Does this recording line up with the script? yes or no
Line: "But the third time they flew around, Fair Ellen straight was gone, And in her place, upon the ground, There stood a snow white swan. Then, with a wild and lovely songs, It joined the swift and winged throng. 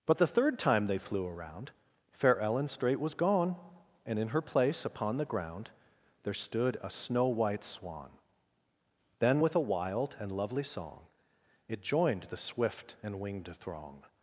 no